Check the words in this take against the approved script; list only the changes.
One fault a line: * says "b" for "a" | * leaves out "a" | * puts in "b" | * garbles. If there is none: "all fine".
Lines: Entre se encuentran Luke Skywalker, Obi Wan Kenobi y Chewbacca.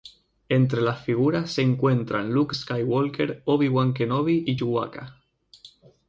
* puts in "las figuras"